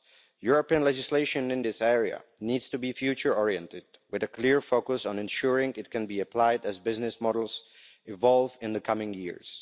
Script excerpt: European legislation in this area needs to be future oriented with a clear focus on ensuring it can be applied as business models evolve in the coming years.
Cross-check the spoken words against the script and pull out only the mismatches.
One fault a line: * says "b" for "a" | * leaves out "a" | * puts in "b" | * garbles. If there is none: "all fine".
all fine